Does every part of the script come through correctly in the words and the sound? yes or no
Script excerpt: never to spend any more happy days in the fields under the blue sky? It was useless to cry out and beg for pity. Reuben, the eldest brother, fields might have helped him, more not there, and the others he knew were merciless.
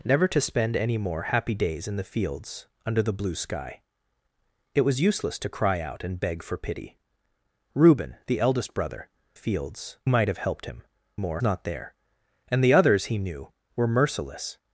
yes